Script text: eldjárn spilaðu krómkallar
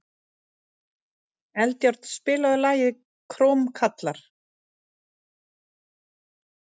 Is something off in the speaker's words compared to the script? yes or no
yes